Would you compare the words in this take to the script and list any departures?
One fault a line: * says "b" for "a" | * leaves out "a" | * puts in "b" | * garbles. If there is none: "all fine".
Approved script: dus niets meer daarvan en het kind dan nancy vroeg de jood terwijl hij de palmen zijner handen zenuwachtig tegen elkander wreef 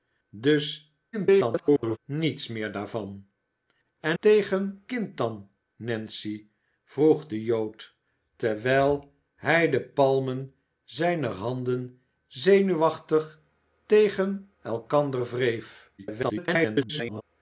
* garbles
* says "tegen" for "het"
* garbles